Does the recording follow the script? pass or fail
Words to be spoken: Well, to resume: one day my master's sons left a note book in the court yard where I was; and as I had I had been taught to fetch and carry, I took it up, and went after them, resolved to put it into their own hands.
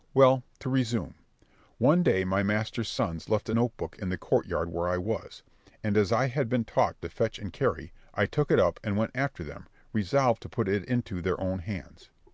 fail